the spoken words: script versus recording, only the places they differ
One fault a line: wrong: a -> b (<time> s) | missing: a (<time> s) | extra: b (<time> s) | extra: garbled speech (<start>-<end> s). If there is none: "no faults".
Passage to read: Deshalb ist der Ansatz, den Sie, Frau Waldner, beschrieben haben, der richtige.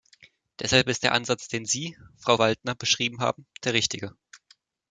no faults